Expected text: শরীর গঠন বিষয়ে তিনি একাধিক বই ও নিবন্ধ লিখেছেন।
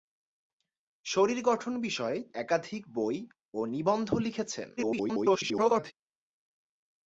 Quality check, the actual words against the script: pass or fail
fail